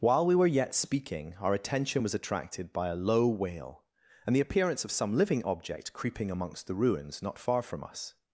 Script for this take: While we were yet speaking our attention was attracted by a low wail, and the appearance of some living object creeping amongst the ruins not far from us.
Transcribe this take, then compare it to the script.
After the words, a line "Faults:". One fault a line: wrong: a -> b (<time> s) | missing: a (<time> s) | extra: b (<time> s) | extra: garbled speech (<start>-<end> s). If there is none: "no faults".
While we were yet speaking our attention was attracted by a low wail, and the appearance of some living object creeping amongst the ruins not far from us.
Faults:
no faults